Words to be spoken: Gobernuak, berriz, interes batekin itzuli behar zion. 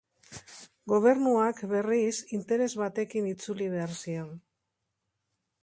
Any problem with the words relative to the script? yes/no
no